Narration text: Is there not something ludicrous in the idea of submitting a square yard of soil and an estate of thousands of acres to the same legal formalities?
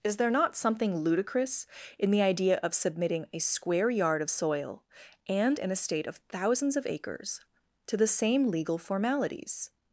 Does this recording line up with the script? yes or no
yes